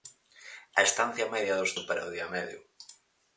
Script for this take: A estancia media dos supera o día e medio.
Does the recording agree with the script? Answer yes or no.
yes